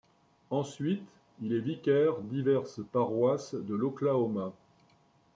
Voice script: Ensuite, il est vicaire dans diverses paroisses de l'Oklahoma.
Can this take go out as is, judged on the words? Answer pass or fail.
fail